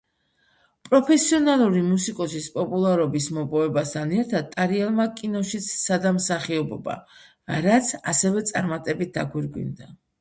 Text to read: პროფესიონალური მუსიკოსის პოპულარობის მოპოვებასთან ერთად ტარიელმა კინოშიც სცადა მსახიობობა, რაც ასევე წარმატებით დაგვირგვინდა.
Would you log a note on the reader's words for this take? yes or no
no